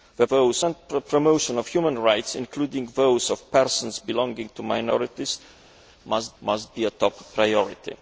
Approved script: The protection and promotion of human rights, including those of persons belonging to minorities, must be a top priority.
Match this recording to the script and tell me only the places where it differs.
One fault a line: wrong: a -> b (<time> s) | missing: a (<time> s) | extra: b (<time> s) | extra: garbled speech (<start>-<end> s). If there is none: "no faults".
wrong: protection -> those (0.3 s)
extra: must (6.4 s)